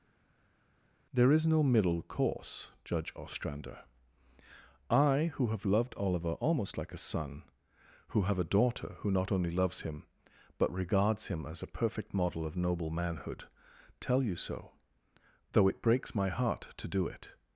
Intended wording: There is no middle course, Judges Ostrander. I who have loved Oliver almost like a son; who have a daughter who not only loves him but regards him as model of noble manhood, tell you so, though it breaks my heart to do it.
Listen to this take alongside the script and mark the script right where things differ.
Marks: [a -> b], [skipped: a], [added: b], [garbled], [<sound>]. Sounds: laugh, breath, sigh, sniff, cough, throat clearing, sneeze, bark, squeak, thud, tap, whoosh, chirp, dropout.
There is no middle course, [Judges -> Judge] Ostrander. I who have loved Oliver almost like a son; who have a daughter who not only loves him but regards him as [added: a perfect] model of noble manhood, tell you so, though it breaks my heart to do it.